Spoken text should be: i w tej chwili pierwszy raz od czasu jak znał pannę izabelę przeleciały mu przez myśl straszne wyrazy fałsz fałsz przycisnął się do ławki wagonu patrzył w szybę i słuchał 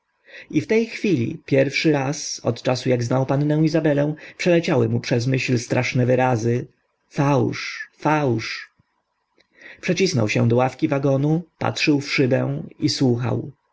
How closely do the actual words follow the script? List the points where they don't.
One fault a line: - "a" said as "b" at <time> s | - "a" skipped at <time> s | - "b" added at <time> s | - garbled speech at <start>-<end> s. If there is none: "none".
none